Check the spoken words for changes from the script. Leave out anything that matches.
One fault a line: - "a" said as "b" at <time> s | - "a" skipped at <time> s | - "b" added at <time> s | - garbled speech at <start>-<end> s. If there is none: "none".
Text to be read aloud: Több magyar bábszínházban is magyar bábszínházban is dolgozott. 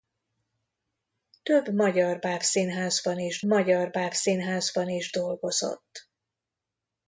none